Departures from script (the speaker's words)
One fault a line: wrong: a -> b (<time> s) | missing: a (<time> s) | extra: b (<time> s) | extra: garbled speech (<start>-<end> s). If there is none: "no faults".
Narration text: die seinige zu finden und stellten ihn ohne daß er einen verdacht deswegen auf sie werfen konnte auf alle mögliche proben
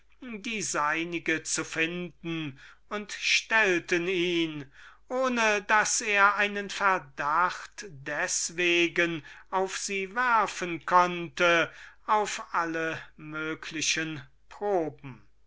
no faults